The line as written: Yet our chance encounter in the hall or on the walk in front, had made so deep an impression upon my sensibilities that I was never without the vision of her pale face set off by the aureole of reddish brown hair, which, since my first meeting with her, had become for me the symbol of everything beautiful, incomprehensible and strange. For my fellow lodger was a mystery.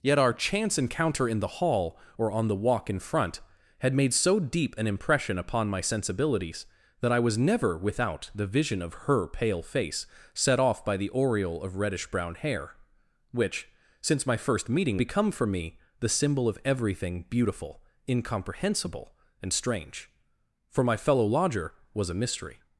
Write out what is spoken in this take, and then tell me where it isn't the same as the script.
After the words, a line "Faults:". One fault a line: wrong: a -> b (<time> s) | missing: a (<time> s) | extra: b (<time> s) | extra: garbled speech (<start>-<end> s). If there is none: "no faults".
Yet our chance encounter in the hall or on the walk in front, had made so deep an impression upon my sensibilities that I was never without the vision of her pale face set off by the aureole of reddish brown hair, which, since my first meeting become for me the symbol of everything beautiful, incomprehensible and strange. For my fellow lodger was a mystery.
Faults:
missing: with her had (15.0 s)